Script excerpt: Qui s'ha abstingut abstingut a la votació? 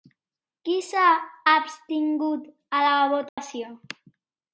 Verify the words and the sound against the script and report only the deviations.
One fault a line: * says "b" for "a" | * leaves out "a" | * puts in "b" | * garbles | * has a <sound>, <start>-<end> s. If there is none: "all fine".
* leaves out "abstingut"
* has a dropout, 3.3-3.4 s